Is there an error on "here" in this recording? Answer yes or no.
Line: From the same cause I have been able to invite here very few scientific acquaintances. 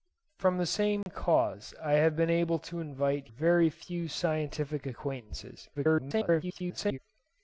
yes